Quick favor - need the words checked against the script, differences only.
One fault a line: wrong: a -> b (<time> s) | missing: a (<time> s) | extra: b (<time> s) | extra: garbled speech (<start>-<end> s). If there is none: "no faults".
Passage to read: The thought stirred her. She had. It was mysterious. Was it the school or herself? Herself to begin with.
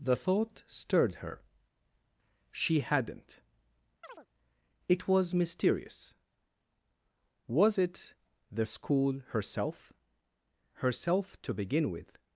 wrong: had -> hadn't (2.8 s)
missing: or (9.2 s)